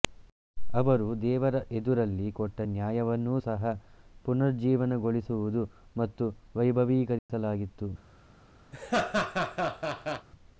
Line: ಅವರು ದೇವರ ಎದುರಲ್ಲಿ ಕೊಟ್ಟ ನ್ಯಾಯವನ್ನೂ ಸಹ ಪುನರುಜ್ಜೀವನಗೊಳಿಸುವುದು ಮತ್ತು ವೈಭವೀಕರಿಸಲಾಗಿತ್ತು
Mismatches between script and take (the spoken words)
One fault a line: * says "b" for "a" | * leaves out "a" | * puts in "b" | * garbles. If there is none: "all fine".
all fine